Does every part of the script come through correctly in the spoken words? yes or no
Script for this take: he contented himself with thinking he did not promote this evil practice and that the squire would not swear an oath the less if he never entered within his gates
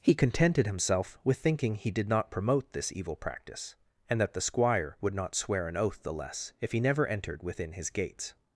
yes